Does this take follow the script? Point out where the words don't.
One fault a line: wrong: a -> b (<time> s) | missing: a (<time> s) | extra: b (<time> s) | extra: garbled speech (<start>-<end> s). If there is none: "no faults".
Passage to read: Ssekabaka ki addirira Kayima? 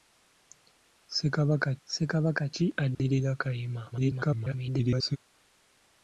extra: ssekabaka (1.8 s)
extra: garbled speech (3.9-5.2 s)